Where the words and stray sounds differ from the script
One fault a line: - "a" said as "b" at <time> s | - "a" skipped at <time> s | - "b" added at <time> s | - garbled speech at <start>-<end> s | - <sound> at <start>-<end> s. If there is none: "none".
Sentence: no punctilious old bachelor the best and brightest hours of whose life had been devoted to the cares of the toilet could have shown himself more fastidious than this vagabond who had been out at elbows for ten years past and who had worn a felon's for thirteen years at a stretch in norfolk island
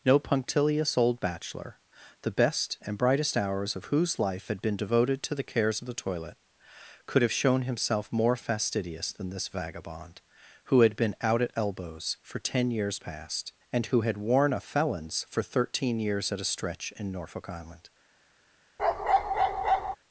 - bark at 18.8-20.0 s